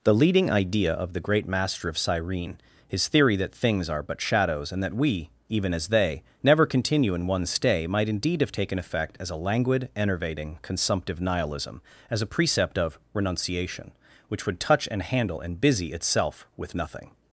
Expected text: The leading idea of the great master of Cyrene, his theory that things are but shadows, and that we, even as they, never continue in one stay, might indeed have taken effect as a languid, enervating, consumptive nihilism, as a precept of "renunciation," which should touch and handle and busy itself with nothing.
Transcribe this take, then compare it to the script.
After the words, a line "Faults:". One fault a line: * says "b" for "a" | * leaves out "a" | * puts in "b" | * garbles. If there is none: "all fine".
The leading idea of the great master of Cyrene, his theory that things are but shadows, and that we, even as they, never continue in one stay, might indeed have taken effect as a languid, enervating, consumptive nihilism, as a precept of "renunciation," which would touch and handle and busy itself with nothing.
Faults:
* says "would" for "should"